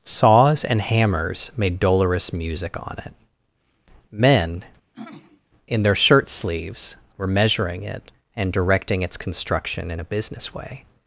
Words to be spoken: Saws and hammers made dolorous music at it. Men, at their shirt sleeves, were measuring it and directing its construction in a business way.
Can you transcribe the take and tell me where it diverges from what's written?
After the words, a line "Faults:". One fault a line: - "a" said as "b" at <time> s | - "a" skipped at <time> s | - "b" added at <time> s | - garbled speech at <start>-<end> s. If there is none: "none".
Saws and hammers made dolorous music on it. Men, in their shirt sleeves, were measuring it and directing its construction in a business way.
Faults:
- "at" said as "on" at 2.8 s
- "at" said as "in" at 5.7 s